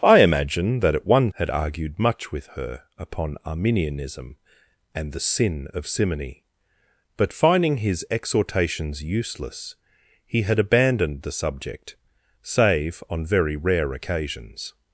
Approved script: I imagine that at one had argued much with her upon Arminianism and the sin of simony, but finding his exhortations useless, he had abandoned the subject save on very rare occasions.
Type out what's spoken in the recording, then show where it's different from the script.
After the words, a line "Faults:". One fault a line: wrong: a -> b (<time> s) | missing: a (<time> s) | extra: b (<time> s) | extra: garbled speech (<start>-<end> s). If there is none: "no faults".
I imagine that at one had argued much with her upon Arminianism and the sin of simony, but finding his exhortations useless, he had abandoned the subject save on very rare occasions.
Faults:
no faults